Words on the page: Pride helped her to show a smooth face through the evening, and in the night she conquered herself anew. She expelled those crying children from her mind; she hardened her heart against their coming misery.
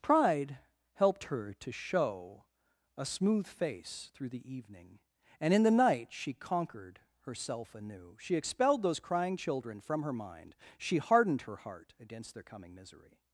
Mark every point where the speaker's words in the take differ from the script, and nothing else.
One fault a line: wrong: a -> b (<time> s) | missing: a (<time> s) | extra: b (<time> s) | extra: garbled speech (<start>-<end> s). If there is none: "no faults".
no faults